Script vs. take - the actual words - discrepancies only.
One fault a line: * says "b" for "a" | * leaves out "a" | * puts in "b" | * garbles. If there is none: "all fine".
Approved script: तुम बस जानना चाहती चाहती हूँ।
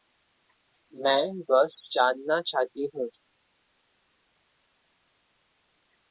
* says "मैं" for "तुम"
* leaves out "चाहती"